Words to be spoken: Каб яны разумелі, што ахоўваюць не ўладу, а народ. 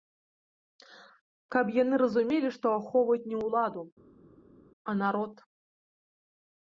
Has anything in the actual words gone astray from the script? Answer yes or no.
no